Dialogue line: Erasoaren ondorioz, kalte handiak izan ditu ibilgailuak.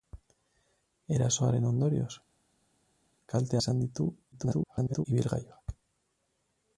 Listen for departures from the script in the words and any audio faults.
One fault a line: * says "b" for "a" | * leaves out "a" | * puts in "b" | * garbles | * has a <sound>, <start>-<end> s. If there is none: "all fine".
* leaves out "handiak"
* garbles